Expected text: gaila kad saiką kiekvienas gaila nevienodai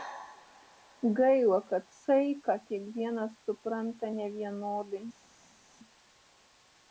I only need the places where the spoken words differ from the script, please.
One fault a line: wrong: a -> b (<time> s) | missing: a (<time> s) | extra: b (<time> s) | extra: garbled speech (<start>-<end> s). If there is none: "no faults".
wrong: gaila -> supranta (3.5 s)